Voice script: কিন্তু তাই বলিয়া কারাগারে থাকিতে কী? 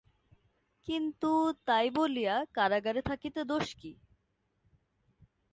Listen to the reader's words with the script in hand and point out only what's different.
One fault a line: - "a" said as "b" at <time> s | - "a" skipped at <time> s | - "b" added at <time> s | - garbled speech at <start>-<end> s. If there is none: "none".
- "দোষ" added at 3.4 s